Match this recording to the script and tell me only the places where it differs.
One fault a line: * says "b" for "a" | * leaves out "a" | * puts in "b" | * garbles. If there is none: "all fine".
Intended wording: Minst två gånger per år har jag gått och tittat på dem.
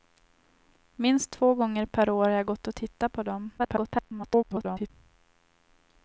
* garbles